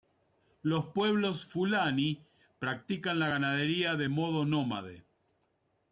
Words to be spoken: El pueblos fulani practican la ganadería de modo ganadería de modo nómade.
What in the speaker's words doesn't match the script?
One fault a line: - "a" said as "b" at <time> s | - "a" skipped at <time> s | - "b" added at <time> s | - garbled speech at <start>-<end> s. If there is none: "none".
- "El" said as "Los" at 0.6 s
- "ganadería de modo" skipped at 4.4 s